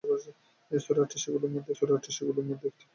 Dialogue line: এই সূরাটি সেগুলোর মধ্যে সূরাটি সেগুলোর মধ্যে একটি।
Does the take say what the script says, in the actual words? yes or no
yes